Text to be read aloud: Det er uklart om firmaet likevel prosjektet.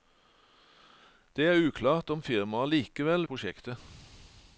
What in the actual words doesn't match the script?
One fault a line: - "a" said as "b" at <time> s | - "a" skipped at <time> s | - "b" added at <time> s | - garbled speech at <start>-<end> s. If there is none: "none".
none